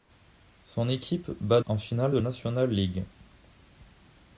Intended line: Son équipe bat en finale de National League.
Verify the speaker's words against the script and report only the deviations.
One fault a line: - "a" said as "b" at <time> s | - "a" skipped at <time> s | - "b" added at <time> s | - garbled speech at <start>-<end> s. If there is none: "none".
none